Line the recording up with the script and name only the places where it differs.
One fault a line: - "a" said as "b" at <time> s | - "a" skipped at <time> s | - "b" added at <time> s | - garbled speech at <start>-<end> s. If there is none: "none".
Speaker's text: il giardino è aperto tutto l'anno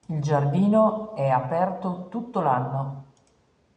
none